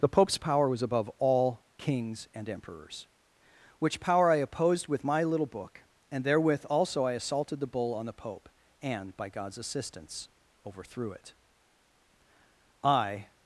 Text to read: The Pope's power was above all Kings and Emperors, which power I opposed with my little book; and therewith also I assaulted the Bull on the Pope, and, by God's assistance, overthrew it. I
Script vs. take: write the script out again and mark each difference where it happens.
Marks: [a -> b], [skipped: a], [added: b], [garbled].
The Pope's power was above all Kings and Emperors, which power I opposed with my little book; and therewith also I assaulted the Bull on the Pope, and, by God's assistance, overthrew it. I